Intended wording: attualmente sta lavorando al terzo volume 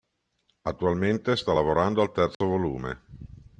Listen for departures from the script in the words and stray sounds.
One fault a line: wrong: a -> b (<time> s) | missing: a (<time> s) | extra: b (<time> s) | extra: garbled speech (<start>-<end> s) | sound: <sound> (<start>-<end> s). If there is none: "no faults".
sound: dropout (2.3-2.4 s)